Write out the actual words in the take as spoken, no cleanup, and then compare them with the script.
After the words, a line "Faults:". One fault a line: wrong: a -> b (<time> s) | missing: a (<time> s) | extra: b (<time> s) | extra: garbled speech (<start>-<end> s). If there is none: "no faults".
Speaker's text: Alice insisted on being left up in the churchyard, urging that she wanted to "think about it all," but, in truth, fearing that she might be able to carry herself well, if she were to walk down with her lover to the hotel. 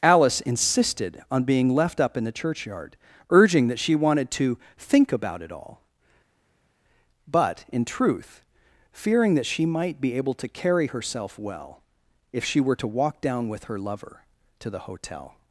Alice insisted on being left up in the churchyard, urging that she wanted to "think about it all," but, in truth, fearing that she might be able to carry herself well, if she were to walk down with her lover to the hotel.
Faults:
no faults